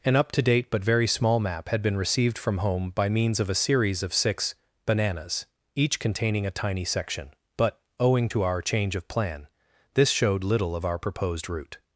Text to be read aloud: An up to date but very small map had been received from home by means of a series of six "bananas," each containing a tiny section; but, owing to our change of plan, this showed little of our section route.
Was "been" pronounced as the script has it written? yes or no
yes